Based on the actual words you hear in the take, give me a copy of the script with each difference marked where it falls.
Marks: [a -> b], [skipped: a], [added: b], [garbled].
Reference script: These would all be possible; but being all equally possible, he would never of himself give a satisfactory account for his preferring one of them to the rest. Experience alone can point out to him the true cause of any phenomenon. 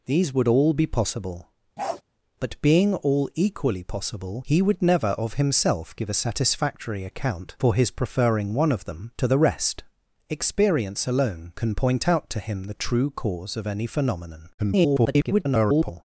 These would all be possible; but being all equally possible, he would never of himself give a satisfactory account for his preferring one of them to the rest. Experience alone can point out to him the true cause of any phenomenon. [garbled]